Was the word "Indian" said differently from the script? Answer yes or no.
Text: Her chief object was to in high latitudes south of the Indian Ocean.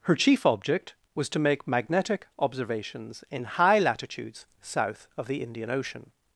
no